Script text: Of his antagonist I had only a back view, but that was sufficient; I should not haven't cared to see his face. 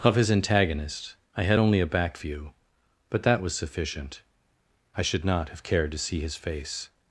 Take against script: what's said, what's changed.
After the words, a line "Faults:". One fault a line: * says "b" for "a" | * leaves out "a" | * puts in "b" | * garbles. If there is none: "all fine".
Of his antagonist I had only a back view, but that was sufficient; I should not have cared to see his face.
Faults:
* says "have" for "haven't"